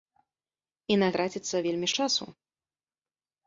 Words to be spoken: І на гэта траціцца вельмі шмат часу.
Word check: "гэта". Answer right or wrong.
wrong